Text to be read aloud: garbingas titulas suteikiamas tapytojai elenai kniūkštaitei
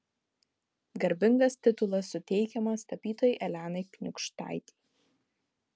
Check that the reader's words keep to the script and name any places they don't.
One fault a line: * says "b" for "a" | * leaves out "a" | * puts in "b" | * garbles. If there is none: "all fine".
all fine